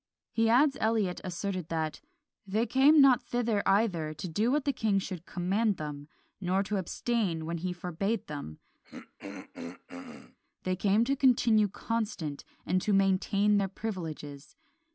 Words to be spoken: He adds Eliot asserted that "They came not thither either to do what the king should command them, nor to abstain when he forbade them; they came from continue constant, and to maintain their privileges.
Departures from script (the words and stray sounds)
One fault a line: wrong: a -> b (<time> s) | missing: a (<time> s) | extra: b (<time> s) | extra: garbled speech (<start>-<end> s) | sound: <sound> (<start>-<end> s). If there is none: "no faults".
sound: throat clearing (8.8-10.4 s)
wrong: from -> to (11.0 s)